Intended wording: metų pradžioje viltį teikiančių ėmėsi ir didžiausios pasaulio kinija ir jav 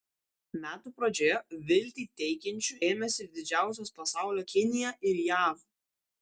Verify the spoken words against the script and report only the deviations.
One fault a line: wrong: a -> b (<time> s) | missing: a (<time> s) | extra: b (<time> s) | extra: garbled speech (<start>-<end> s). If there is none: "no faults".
no faults